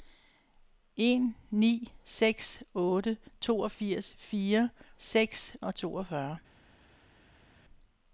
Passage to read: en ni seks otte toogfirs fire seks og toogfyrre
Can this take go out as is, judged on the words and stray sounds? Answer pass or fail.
pass